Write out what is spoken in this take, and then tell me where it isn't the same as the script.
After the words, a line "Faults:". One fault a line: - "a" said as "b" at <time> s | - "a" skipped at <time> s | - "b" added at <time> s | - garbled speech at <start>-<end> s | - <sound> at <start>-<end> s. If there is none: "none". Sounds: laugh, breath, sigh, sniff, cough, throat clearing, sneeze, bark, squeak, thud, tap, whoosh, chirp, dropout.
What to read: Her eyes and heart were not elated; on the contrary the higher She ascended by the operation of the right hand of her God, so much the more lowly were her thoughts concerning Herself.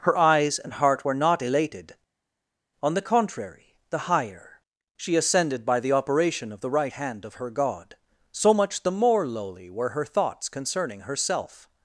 Her eyes and heart were not elated; on the contrary the higher She ascended by the operation of the right hand of her God, so much the more lowly were her thoughts concerning Herself.
Faults:
none